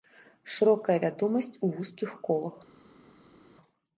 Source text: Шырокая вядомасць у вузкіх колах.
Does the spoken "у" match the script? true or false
true